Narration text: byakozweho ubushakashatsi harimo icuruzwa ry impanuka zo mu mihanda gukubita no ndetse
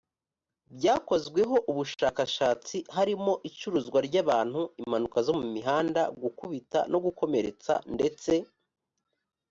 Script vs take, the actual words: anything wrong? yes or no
yes